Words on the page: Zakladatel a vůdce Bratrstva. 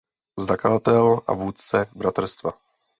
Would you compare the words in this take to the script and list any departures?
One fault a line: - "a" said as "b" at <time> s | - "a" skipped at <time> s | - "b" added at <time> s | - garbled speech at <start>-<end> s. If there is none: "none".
none